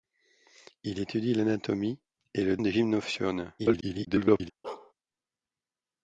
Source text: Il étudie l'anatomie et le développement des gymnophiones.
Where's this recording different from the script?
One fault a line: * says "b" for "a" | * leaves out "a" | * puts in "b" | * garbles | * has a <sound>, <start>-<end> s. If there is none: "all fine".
* leaves out "développement"
* garbles
* has a bark, 4.6-4.9 s